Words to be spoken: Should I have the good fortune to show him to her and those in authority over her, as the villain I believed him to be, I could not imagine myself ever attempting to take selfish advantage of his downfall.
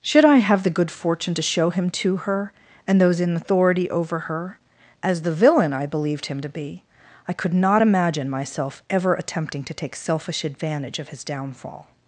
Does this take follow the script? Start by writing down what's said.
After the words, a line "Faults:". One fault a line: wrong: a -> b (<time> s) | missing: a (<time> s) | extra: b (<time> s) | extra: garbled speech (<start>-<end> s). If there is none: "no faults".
Should I have the good fortune to show him to her and those in authority over her, as the villain I believed him to be, I could not imagine myself ever attempting to take selfish advantage of his downfall.
Faults:
no faults